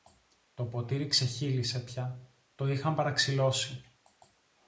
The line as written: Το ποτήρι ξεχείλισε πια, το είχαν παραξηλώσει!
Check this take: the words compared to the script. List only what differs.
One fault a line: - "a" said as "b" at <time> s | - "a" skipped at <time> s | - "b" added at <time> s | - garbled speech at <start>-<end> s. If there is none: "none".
none